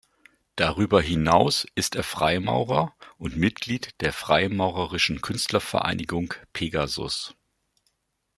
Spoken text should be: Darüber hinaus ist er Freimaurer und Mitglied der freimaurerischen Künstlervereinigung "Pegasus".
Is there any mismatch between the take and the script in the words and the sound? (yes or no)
no